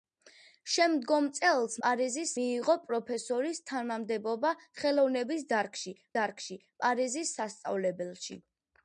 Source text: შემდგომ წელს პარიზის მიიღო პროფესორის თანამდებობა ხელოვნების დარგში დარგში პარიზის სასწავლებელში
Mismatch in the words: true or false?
false